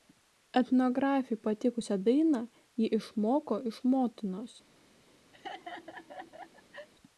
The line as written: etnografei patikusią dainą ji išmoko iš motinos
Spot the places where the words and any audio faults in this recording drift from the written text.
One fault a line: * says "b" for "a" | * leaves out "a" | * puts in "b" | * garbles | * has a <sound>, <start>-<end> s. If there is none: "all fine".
* has a laugh, 5.3-6.9 s